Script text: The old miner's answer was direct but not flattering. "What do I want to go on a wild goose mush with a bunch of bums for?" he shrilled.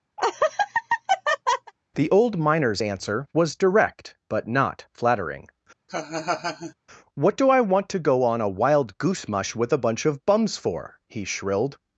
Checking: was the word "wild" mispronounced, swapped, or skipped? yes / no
no